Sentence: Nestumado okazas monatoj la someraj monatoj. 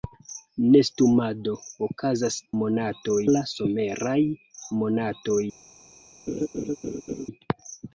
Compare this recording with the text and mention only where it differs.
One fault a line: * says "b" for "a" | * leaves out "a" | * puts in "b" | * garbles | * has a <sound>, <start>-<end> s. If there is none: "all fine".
* has a laugh, 6.3-7.3 s